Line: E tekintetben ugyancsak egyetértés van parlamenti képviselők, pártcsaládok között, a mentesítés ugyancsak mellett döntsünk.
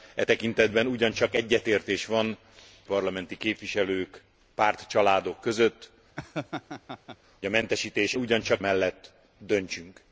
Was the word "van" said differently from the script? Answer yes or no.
no